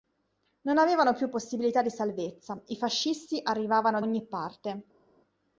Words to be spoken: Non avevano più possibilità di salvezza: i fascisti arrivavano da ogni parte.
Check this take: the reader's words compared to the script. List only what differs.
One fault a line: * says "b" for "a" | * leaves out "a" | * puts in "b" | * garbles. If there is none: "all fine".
* leaves out "da"